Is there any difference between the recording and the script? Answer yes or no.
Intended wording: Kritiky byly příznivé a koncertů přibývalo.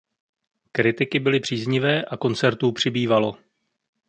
no